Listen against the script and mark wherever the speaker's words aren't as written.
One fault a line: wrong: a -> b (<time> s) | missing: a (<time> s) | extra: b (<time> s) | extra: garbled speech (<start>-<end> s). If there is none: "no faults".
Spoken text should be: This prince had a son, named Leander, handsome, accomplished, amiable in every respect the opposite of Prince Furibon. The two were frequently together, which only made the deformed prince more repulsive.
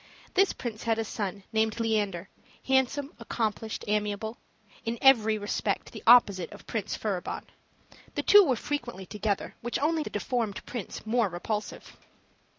missing: made (10.0 s)